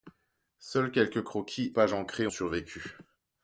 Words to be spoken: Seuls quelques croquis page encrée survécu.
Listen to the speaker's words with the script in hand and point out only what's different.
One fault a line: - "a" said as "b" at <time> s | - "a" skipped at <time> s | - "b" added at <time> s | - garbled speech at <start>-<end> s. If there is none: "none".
none